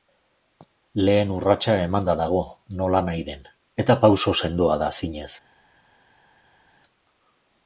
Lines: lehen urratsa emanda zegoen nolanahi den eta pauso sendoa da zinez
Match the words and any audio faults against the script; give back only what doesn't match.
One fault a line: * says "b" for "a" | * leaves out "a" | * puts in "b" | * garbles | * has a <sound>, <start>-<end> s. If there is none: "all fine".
* says "dago" for "zegoen"